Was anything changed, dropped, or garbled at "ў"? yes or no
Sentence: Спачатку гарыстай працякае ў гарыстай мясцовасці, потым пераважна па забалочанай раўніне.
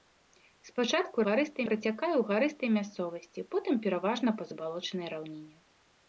no